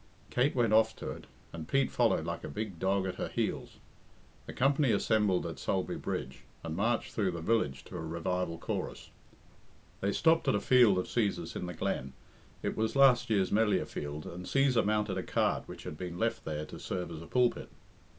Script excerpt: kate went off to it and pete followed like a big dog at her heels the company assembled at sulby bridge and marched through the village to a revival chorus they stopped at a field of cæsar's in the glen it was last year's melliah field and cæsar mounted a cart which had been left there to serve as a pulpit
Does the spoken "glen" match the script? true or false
true